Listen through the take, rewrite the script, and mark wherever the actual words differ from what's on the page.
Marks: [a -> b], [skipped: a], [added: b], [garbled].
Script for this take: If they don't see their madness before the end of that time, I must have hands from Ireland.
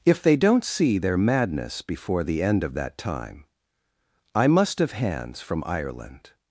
If they don't see their madness before the end of that time, I must have hands from Ireland.